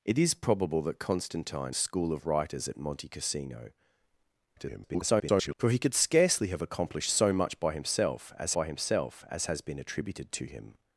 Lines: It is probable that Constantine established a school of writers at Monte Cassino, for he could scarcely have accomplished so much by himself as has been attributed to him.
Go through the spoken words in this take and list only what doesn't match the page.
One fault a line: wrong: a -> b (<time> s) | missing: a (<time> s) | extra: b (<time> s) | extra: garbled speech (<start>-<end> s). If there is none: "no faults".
missing: established (1.8 s)
extra: garbled speech (4.6-5.5 s)
extra: by himself as (8.5 s)